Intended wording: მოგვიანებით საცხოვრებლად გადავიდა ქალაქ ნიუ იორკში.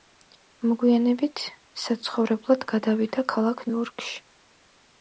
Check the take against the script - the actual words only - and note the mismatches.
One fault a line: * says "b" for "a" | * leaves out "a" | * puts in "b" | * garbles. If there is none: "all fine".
* leaves out "ნიუ"